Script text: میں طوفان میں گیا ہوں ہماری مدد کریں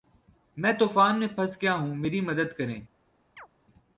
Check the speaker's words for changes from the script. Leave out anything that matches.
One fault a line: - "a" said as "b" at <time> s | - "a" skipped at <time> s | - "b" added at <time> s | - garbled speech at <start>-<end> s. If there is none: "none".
- "پھنس" added at 1.3 s
- "ہماری" said as "میری" at 1.9 s